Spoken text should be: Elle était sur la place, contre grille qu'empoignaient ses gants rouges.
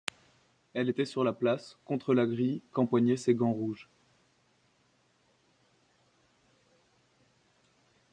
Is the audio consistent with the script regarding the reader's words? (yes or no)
no